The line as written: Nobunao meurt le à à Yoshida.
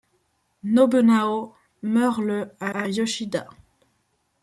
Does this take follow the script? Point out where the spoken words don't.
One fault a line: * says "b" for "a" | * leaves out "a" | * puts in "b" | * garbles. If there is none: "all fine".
all fine